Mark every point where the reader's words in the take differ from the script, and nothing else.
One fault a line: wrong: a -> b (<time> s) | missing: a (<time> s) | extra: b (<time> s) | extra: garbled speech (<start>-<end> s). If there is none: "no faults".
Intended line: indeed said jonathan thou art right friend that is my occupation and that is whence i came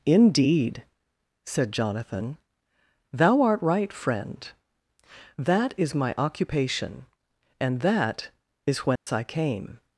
no faults